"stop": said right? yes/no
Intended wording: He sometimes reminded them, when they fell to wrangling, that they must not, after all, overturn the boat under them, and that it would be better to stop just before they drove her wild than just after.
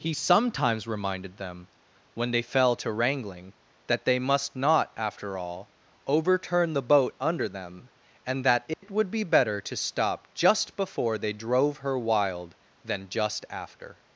yes